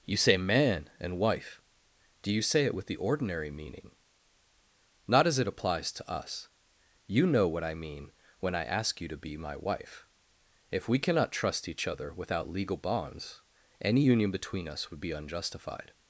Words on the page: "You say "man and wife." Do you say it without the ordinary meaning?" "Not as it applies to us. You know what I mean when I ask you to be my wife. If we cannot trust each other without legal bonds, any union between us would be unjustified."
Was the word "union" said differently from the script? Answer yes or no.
no